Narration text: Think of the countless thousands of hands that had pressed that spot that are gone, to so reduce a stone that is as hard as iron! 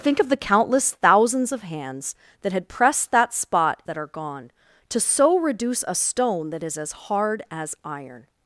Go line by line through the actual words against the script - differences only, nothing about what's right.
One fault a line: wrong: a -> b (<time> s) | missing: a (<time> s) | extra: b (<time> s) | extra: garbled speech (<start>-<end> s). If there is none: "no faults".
no faults